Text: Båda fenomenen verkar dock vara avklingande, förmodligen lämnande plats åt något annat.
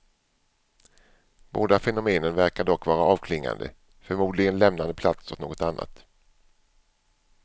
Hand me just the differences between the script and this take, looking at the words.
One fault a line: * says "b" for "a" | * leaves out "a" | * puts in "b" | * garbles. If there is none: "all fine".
all fine